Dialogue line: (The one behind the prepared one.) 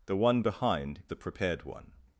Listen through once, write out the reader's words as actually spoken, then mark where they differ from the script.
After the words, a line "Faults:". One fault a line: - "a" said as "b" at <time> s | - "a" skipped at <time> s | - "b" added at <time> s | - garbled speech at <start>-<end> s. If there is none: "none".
(The one behind the prepared one.)
Faults:
none